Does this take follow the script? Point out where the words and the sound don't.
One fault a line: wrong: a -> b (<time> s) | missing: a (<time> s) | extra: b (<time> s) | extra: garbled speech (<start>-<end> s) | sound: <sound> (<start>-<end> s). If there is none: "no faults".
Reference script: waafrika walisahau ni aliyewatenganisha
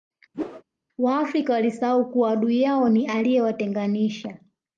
sound: whoosh (0.3-0.6 s)
extra: kuwa adui yao (2.1 s)